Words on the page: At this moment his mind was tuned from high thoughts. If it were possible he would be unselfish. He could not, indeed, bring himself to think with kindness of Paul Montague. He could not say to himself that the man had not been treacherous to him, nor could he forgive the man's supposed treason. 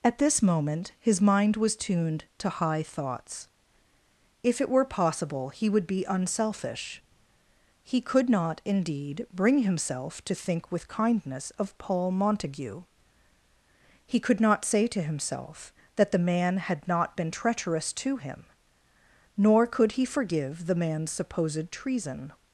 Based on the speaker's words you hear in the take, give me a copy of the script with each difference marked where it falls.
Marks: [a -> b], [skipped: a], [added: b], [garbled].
At this moment his mind was tuned [from -> to] high thoughts. If it were possible he would be unselfish. He could not, indeed, bring himself to think with kindness of Paul Montague. He could not say to himself that the man had not been treacherous to him, nor could he forgive the man's supposed treason.